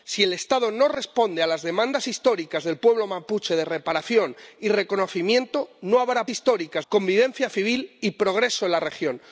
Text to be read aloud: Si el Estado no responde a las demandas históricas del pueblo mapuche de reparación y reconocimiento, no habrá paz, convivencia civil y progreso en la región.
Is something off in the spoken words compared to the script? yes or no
yes